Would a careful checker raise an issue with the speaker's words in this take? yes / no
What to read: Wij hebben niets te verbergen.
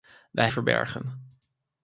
yes